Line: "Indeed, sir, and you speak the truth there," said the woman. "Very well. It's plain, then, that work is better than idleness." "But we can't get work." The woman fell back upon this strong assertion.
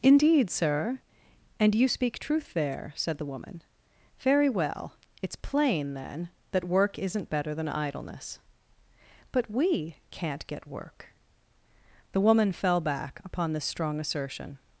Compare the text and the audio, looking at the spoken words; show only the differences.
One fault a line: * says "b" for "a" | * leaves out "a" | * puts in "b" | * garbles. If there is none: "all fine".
* leaves out "the"
* says "isn't" for "is"